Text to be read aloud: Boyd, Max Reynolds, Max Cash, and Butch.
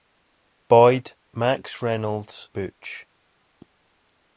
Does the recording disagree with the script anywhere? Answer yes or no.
yes